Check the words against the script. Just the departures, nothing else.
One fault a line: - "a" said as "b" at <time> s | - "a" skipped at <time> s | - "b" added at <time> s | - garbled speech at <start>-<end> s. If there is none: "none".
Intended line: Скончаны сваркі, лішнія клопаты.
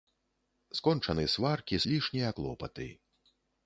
none